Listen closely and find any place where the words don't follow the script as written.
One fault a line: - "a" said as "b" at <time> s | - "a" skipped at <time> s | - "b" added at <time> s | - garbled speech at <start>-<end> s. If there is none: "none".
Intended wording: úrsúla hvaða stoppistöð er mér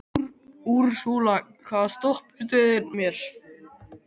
none